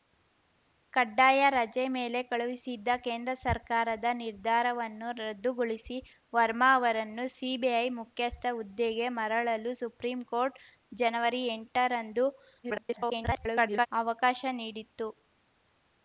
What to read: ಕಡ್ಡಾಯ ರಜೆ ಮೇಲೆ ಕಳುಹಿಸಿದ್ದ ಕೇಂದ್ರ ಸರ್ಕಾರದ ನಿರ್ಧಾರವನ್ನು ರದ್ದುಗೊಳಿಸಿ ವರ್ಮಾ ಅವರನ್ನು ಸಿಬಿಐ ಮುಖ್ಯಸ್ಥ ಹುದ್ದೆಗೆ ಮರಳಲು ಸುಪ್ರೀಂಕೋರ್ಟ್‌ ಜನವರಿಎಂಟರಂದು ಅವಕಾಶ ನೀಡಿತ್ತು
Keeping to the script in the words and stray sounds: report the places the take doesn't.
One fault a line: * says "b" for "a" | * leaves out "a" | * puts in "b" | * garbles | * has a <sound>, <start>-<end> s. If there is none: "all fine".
* garbles